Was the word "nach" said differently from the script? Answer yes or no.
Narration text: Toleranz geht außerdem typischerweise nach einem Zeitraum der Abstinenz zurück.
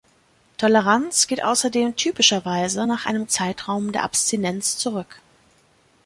no